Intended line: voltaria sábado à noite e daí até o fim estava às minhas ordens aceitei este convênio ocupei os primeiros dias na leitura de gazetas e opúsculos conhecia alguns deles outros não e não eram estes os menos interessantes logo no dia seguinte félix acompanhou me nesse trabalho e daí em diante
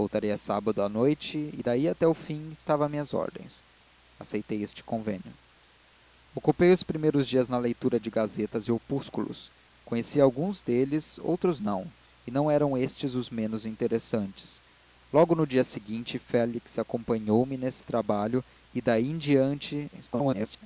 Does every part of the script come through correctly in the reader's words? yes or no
no